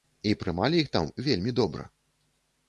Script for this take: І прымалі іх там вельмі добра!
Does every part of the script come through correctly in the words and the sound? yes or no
yes